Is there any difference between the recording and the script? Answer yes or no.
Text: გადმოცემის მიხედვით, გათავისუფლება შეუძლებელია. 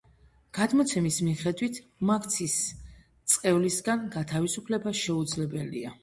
yes